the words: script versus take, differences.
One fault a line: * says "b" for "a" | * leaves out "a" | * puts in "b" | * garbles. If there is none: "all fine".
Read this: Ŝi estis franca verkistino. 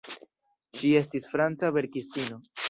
all fine